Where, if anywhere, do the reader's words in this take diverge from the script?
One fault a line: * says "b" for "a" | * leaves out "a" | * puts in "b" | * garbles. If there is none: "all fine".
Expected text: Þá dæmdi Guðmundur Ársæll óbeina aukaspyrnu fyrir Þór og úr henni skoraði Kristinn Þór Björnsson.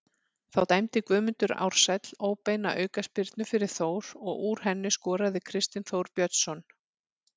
all fine